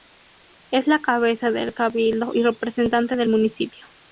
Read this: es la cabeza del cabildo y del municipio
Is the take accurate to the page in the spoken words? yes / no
no